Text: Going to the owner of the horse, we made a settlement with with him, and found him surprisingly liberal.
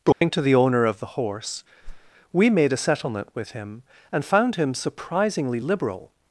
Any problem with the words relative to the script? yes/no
yes